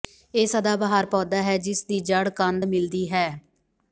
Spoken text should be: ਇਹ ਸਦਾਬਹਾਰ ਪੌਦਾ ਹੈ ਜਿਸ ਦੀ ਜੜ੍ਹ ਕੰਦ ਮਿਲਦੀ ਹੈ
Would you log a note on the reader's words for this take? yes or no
no